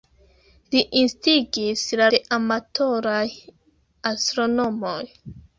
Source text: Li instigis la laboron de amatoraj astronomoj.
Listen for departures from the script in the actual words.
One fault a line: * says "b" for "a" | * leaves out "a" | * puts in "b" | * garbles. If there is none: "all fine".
* leaves out "laboron"